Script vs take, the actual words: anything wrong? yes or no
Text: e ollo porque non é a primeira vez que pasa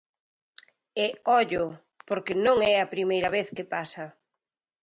no